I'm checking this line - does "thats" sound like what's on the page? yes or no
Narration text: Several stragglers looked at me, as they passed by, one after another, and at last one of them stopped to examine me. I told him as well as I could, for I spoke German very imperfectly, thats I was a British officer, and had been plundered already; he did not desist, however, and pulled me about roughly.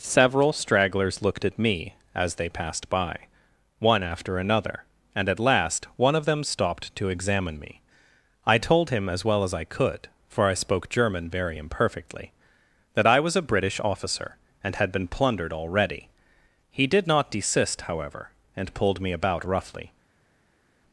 no